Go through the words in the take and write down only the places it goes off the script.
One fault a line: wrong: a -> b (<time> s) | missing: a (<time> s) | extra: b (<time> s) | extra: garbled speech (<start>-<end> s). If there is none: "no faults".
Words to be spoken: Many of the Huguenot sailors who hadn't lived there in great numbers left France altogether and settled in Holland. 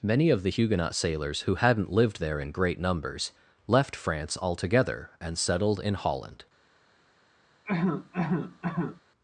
no faults